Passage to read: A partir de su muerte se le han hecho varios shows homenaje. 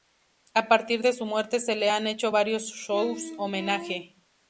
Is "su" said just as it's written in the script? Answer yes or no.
yes